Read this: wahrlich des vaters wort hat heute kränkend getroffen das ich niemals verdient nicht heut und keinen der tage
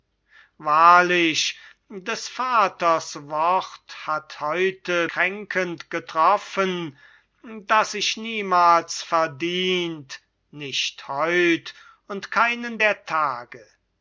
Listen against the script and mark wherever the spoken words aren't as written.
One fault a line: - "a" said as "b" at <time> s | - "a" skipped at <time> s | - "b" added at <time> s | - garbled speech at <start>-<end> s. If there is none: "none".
none